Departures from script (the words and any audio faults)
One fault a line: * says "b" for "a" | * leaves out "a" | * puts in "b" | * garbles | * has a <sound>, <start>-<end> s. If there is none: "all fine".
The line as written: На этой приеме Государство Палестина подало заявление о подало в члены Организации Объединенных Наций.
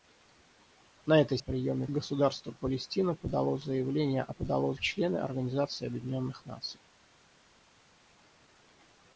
all fine